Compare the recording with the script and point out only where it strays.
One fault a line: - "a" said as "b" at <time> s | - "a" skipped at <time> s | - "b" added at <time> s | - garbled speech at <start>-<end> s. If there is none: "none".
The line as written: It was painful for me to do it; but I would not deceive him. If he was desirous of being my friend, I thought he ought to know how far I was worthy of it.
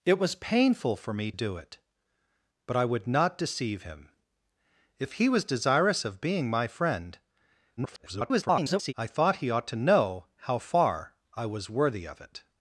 - "to" skipped at 1.3 s
- garbled speech at 7.8-8.9 s